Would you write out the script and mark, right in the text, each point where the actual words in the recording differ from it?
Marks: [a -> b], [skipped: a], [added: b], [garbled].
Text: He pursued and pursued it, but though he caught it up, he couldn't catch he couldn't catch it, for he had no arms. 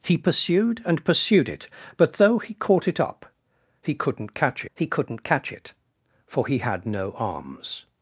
He pursued and pursued it, but though he caught it up, he couldn't catch he couldn't catch it, for he had no arms.